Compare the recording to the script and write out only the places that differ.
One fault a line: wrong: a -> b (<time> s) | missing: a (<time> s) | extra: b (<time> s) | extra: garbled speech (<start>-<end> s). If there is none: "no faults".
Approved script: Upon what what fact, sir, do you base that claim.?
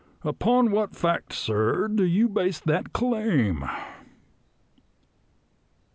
missing: what (0.9 s)